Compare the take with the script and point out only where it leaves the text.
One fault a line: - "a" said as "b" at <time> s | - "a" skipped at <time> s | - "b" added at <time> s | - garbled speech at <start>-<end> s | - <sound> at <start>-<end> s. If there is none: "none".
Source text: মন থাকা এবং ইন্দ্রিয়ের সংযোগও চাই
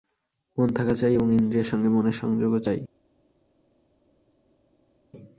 - "চাই" added at 0.9 s
- "সঙ্গে মনের" added at 1.7 s